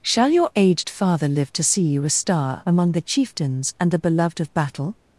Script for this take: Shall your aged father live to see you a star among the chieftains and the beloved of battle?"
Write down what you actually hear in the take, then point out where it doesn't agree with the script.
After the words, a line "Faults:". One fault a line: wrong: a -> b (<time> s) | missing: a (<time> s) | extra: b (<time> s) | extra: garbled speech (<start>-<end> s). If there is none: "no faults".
Shall your aged father live to see you a star among the chieftains and the beloved of battle?"
Faults:
no faults